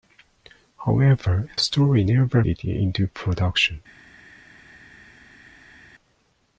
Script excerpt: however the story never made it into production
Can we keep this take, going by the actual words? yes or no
no